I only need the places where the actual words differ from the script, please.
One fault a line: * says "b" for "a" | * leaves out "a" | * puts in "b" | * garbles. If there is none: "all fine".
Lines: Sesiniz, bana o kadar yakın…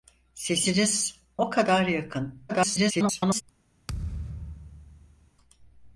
* leaves out "bana"
* garbles